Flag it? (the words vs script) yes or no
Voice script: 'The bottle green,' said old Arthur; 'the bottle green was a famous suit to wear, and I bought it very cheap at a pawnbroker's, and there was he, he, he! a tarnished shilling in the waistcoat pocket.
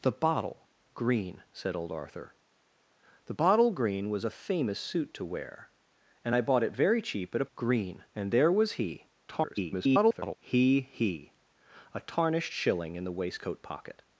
yes